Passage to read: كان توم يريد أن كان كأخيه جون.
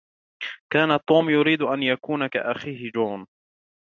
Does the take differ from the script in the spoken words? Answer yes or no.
yes